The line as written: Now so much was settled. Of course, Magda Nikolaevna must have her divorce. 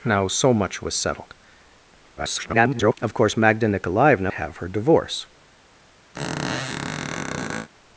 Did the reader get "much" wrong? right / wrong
right